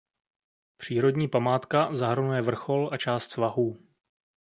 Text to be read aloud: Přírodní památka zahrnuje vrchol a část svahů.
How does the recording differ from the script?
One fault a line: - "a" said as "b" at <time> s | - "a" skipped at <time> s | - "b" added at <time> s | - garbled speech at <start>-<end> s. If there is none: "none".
none